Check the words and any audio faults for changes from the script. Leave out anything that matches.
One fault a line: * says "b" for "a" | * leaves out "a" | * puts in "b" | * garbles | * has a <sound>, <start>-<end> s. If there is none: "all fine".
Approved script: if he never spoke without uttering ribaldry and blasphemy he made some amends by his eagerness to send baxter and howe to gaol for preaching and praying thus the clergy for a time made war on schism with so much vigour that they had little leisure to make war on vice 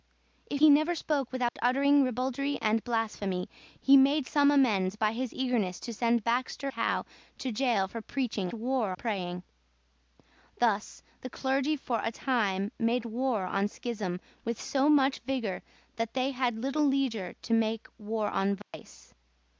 * has a dropout, 1.5-1.6 s
* leaves out "and"
* says "war" for "and"
* has a dropout, 18.6-18.7 s